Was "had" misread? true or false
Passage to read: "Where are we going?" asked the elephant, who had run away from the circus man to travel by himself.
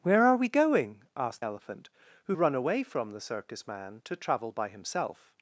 true